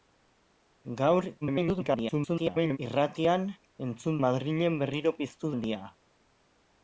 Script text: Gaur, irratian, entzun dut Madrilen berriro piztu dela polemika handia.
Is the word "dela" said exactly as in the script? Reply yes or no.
no